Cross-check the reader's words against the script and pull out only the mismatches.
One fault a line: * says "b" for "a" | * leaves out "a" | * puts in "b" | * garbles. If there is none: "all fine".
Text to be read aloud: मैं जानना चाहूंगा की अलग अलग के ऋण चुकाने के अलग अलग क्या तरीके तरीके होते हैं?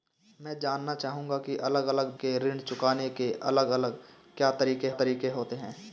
all fine